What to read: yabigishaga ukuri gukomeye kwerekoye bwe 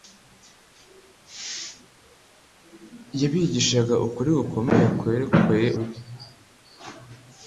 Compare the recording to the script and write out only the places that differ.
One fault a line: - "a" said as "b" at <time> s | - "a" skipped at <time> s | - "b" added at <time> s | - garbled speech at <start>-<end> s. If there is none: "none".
none